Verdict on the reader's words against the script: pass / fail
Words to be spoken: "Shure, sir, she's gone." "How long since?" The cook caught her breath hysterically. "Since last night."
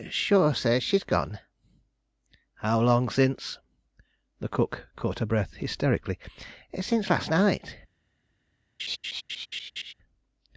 pass